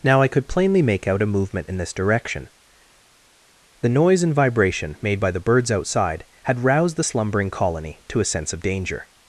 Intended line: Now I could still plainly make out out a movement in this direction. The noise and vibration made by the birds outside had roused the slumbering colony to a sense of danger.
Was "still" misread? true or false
true